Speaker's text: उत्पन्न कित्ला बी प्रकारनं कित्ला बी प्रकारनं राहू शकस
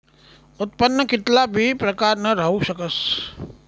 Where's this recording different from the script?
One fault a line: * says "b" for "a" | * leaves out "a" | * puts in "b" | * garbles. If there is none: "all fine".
* leaves out "कित्ला बी प्रकारनं"